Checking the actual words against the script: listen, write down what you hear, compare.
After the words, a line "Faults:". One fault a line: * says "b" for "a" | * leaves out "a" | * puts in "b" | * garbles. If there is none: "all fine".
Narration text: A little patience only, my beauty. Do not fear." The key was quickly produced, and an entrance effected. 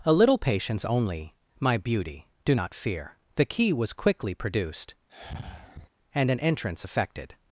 A little patience only, my beauty. Do not fear." The key was quickly produced, and an entrance effected.
Faults:
all fine